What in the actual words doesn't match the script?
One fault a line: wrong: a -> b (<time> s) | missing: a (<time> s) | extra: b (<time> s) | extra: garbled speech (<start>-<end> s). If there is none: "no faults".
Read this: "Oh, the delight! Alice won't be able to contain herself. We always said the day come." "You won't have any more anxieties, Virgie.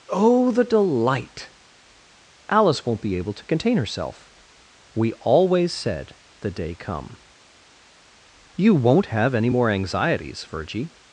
no faults